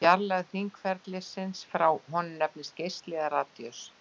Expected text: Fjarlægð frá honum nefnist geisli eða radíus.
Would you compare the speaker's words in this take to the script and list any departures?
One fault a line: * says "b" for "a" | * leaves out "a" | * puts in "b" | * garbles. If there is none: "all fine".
* puts in "hringferilsins"